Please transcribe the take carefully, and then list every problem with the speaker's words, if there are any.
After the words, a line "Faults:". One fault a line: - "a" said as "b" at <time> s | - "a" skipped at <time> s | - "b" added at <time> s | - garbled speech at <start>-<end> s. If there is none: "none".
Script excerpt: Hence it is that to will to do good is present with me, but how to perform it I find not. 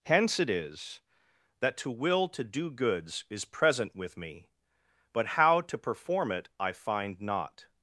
Hence it is that to will to do goods is present with me, but how to perform it I find not.
Faults:
- "good" said as "goods" at 2.7 s